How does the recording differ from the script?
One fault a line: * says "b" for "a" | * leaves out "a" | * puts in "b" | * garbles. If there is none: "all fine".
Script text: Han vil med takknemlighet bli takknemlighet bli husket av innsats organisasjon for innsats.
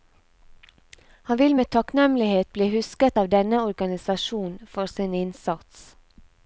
* leaves out "takknemlighet bli"
* says "denne" for "innsats"
* puts in "sin"